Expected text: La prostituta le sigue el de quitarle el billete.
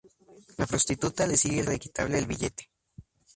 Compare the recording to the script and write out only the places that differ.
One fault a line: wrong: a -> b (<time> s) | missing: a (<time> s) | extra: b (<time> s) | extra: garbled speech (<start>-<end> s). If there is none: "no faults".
no faults